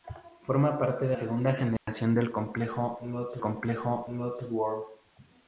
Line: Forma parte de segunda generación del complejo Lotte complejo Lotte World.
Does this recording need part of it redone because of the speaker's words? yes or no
no